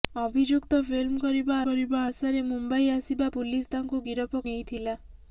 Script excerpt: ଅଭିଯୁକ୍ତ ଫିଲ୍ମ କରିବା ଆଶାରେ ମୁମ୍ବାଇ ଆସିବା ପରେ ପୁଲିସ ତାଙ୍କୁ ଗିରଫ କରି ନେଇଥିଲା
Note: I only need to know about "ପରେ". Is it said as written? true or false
false